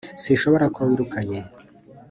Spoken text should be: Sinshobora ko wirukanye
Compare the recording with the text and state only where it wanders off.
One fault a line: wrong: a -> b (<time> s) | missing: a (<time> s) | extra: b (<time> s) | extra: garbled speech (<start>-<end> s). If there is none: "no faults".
no faults